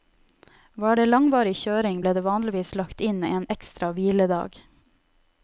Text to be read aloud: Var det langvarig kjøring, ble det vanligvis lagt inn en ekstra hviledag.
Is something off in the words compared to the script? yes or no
no